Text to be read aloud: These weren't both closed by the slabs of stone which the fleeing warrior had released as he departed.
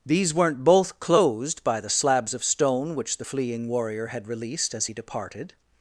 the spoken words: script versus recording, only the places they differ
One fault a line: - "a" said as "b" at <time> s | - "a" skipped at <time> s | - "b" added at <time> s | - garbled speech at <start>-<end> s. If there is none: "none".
none